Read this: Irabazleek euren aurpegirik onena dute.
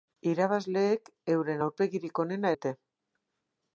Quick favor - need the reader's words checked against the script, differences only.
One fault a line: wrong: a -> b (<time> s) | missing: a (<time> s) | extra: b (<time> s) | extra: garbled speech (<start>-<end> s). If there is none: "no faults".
no faults